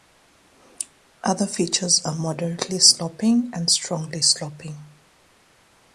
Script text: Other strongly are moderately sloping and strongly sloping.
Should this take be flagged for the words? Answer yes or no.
yes